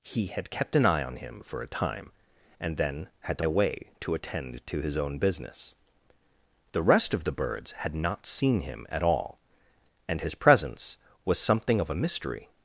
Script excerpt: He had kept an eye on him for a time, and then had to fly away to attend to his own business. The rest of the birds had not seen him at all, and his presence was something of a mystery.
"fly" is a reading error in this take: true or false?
true